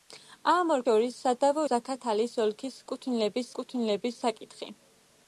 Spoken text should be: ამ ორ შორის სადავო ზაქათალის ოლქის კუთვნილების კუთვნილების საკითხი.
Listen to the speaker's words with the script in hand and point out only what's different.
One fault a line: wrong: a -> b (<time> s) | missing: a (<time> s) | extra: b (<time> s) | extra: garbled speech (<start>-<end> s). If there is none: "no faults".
no faults